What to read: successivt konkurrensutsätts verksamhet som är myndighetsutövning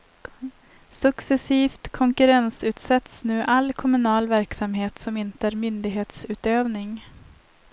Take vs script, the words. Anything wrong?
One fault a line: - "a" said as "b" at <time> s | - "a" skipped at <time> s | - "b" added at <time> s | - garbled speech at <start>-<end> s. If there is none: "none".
- "nu all kommunal" added at 3.2 s
- "inte" added at 5.2 s